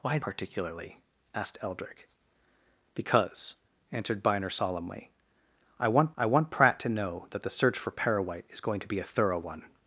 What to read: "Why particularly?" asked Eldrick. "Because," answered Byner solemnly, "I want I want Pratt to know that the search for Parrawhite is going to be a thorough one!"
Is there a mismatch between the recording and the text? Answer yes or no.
no